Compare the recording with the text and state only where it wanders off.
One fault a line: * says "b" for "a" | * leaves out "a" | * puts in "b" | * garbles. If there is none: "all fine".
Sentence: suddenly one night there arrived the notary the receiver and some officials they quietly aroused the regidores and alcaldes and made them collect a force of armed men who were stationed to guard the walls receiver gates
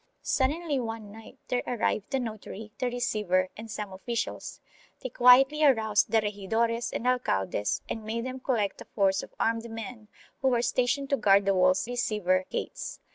all fine